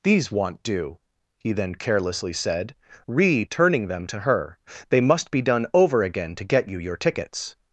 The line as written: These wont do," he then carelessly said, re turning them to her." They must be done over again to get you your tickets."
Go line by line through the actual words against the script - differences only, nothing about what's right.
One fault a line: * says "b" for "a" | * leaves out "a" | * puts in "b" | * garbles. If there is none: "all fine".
all fine